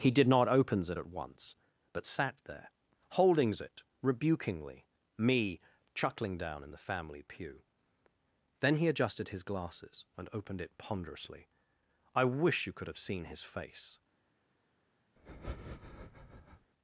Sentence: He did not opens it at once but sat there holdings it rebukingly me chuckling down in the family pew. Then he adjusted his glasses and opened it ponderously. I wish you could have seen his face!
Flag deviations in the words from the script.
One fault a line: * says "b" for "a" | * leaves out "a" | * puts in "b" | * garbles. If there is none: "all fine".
all fine